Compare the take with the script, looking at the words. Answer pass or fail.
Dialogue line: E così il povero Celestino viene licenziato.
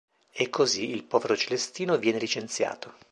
pass